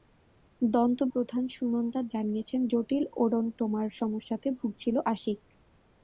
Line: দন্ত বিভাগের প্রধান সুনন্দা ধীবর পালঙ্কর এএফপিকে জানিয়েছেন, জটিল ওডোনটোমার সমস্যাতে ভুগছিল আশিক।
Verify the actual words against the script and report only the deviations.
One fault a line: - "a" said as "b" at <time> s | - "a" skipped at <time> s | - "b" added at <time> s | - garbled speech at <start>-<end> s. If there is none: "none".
- "বিভাগের" skipped at 1.0 s
- "ধীবর পালঙ্কর এএফপিকে" skipped at 2.0 s